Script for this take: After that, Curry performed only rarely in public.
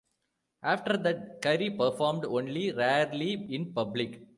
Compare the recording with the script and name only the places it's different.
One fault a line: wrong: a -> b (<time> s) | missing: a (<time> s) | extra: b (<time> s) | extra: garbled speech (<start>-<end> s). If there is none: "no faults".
no faults